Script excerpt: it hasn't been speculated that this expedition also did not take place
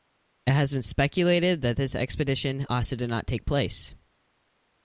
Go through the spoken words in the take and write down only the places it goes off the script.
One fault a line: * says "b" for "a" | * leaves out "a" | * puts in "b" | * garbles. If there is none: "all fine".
* says "has" for "hasn't"